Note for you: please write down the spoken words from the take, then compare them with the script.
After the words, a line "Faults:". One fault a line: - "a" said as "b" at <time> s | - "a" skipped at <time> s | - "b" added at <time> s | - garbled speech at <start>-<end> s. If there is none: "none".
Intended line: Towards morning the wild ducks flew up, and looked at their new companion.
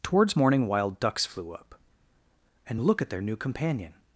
Towards morning wild ducks flew up, and look at their new companion.
Faults:
- "the" skipped at 0.7 s
- "looked" said as "look" at 2.8 s